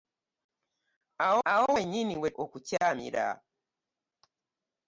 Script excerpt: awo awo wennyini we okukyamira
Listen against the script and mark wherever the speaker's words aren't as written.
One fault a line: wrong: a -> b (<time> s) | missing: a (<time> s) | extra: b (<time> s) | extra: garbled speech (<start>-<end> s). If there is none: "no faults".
no faults